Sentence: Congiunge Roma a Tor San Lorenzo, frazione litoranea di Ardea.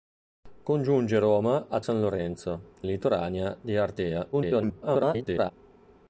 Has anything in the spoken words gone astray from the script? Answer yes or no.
yes